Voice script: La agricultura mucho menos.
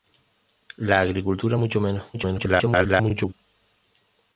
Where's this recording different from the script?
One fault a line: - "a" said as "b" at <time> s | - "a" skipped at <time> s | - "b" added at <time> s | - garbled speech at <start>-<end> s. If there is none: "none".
- garbled speech at 2.1-3.3 s